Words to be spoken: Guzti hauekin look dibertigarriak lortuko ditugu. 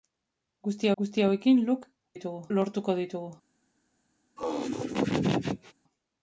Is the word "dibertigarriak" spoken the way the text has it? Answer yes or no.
no